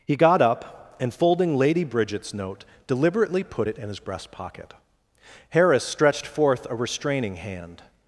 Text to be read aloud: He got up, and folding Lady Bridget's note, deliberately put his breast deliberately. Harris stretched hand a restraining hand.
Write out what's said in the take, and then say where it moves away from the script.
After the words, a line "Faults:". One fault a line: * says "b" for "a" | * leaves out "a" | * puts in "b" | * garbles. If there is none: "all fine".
He got up, and folding Lady Bridget's note, deliberately put it in his breast pocket. Harris stretched forth a restraining hand.
Faults:
* puts in "it in"
* says "pocket" for "deliberately"
* says "forth" for "hand"